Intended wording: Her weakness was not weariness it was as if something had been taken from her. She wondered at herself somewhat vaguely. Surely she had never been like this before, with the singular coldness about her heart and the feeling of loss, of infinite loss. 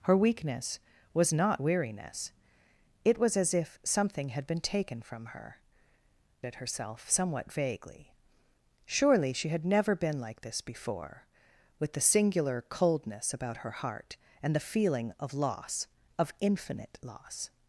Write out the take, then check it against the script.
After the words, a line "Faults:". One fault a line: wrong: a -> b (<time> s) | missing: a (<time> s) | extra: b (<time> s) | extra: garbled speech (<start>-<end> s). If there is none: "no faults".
Her weakness was not weariness it was as if something had been taken from her. At herself somewhat vaguely. Surely she had never been like this before, with the singular coldness about her heart and the feeling of loss, of infinite loss.
Faults:
missing: She wondered (5.5 s)